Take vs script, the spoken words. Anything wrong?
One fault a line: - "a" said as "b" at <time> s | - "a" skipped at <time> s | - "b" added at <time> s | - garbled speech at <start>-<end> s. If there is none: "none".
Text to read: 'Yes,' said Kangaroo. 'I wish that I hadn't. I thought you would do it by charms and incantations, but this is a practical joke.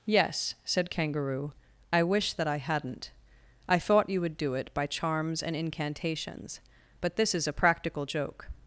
none